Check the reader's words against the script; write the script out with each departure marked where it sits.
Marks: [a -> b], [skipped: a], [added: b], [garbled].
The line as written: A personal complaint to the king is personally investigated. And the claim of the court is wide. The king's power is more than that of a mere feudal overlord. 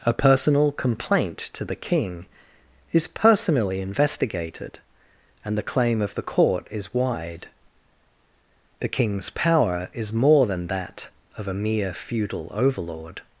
A personal complaint to the king is personally investigated. And the claim of the court is wide. The king's power is more than that of a mere feudal overlord.